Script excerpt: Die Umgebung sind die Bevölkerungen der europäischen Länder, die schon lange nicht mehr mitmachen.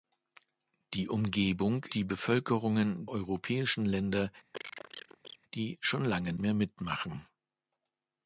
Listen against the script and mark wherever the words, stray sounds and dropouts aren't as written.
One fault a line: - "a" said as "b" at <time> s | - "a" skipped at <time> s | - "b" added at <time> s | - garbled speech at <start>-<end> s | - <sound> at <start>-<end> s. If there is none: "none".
- "sind" skipped at 1.9 s
- "der" skipped at 3.1 s
- cough at 4.5-5.4 s
- "nicht" skipped at 6.3 s